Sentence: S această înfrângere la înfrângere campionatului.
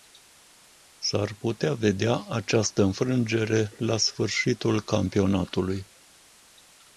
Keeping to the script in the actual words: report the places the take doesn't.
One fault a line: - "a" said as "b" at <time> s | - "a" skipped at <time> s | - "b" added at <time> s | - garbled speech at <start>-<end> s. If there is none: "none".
- "ar putea vedea" added at 1.1 s
- "înfrângere" said as "sfârșitul" at 4.0 s